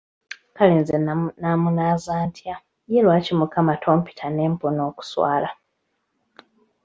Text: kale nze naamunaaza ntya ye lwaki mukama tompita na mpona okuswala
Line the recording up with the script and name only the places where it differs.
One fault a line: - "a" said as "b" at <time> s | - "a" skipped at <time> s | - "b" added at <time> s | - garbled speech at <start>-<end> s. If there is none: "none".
- "na" said as "ne" at 4.3 s